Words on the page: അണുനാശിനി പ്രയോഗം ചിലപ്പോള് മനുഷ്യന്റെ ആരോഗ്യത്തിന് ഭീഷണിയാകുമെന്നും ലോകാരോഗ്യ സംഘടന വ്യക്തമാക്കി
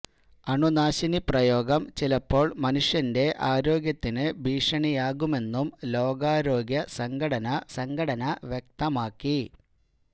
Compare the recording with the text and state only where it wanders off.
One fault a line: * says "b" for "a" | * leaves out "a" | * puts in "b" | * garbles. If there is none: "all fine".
* puts in "സംഘടന"